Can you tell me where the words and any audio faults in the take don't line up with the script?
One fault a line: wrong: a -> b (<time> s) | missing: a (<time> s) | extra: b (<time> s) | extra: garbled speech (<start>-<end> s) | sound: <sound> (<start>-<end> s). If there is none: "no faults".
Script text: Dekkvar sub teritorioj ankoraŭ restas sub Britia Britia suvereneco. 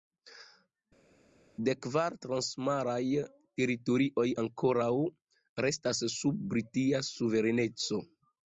wrong: sub -> transmaraj (2.3 s)
missing: Britia (7.0 s)